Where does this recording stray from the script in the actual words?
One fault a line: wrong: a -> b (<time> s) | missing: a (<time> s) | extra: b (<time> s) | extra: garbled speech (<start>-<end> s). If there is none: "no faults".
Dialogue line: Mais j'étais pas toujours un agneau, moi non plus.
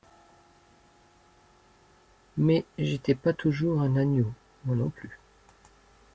no faults